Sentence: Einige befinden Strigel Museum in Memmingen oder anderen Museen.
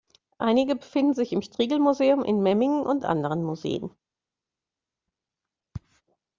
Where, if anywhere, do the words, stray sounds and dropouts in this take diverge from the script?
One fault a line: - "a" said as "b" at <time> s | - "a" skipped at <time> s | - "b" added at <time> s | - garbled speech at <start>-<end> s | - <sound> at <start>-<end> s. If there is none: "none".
- "sich im" added at 1.1 s
- "oder" said as "und" at 2.8 s